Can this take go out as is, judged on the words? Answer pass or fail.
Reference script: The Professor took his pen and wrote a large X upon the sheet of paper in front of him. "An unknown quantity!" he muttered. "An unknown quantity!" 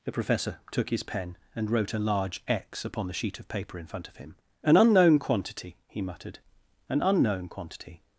pass